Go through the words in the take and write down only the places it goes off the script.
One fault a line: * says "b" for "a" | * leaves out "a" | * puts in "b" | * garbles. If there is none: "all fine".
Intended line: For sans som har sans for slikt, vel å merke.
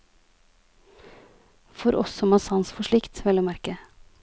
* says "oss" for "sans"